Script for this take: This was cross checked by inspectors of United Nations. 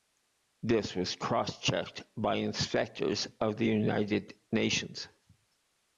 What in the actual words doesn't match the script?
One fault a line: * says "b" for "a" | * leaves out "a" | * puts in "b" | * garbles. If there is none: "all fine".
* puts in "the"